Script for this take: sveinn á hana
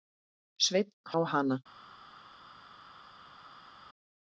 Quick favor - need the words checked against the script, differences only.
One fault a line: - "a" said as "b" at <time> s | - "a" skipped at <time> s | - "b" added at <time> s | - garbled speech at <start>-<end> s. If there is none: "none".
none